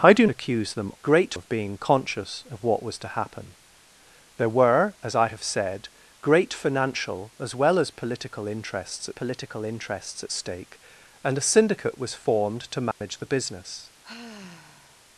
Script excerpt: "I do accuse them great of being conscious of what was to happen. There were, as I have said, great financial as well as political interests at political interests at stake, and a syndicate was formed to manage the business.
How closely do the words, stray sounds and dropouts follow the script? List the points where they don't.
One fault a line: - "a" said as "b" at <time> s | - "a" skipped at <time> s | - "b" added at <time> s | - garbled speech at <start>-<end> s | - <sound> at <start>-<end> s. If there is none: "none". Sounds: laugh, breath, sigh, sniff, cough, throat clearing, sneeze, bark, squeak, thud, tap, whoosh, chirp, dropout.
- dropout at 12.9-13.0 s
- sigh at 14.0-15.1 s